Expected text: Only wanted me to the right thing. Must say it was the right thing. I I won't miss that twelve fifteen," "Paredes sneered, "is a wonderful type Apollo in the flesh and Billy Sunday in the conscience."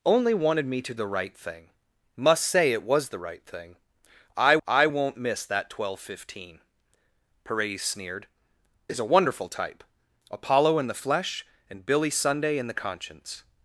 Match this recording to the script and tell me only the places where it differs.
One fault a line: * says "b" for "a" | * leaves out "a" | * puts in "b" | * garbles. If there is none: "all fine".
all fine